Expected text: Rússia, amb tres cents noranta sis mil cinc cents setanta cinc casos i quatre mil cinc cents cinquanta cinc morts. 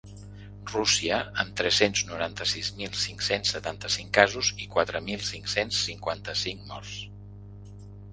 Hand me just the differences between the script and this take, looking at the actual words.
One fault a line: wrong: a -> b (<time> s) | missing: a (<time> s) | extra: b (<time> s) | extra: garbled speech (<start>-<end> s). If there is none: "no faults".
no faults